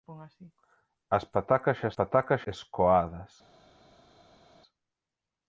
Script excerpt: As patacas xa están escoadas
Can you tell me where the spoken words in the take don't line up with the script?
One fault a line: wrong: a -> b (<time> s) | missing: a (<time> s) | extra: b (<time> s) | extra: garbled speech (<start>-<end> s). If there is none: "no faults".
wrong: están -> patacas (2.0 s)